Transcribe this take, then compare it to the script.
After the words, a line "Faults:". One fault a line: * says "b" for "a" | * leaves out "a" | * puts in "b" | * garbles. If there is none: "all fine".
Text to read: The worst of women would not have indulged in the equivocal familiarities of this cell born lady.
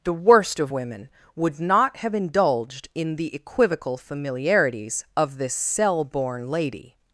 The worst of women would not have indulged in the equivocal familiarities of this cell born lady.
Faults:
all fine